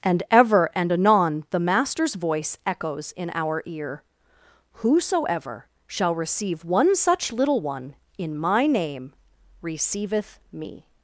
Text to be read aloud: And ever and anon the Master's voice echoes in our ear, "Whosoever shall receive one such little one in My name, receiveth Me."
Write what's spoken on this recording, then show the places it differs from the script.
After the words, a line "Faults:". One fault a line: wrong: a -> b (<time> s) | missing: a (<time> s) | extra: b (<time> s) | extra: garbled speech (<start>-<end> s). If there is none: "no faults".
And ever and anon the Master's voice echoes in our ear, "Whosoever shall receive one such little one in My name, receiveth Me."
Faults:
no faults